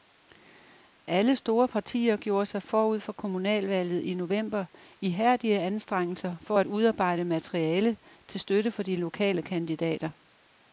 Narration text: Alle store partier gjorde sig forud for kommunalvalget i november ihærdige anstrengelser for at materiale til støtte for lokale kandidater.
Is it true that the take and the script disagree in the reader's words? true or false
true